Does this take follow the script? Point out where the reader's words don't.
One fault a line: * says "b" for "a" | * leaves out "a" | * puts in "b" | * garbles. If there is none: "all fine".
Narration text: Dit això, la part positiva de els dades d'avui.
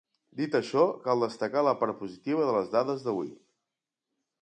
* puts in "cal destacar"
* says "les" for "els"